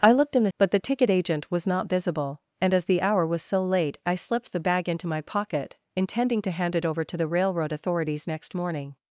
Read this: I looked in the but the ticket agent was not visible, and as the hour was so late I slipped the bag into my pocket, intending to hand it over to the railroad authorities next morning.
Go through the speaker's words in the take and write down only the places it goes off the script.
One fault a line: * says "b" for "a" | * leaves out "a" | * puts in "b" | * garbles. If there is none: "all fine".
all fine